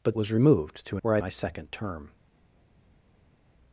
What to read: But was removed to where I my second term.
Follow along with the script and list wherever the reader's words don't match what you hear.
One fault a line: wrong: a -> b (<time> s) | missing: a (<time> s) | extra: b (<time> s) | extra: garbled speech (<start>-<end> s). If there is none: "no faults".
no faults